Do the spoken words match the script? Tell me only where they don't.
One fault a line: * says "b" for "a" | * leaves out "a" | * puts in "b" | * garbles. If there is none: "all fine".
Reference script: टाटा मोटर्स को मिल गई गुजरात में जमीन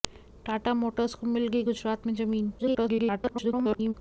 * garbles